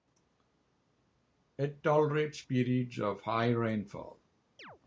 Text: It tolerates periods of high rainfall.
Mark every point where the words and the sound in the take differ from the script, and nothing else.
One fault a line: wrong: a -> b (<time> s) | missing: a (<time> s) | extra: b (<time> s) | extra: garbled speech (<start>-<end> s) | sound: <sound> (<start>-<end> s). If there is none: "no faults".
sound: chirp (4.6-4.8 s)